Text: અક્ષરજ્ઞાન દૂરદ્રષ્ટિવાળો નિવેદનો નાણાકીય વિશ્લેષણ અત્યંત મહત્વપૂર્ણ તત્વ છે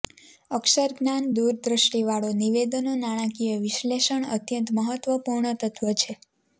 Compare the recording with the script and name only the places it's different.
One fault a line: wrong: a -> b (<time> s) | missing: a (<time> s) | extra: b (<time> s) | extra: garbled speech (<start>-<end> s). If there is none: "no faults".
no faults